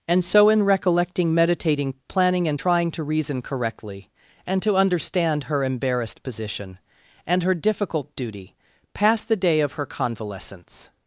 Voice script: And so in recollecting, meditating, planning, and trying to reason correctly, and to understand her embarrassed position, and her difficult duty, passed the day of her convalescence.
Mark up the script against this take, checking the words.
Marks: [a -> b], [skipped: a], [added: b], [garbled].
And so in recollecting, meditating, planning, and trying to reason correctly, and to understand her embarrassed position, and her difficult duty, passed the day of her convalescence.